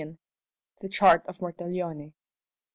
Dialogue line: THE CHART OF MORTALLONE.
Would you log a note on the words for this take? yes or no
no